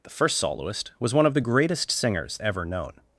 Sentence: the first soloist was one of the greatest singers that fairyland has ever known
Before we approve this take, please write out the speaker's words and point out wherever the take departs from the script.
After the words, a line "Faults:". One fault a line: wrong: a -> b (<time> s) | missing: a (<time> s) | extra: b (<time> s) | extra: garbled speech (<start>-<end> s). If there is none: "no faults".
the first soloist was one of the greatest singers ever known
Faults:
missing: that fairyland has (2.4 s)